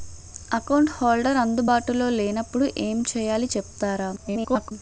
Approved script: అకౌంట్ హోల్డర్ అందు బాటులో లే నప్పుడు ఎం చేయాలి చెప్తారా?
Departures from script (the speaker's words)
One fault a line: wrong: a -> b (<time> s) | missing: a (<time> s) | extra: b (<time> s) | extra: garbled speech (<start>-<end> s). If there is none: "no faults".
extra: garbled speech (4.2-4.7 s)